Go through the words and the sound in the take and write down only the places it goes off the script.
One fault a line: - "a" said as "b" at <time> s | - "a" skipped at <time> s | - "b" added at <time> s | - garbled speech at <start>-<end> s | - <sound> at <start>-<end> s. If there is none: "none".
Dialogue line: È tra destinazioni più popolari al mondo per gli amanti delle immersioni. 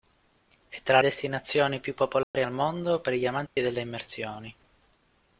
- dropout at 2.2-2.3 s
- dropout at 3.5-3.6 s